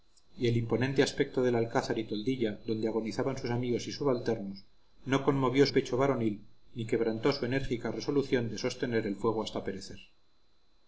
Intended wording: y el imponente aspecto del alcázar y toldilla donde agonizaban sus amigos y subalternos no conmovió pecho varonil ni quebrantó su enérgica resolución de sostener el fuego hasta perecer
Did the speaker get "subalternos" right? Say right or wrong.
right